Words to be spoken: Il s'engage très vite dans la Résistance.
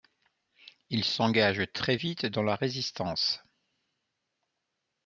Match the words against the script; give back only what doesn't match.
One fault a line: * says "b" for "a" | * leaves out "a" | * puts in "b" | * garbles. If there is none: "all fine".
all fine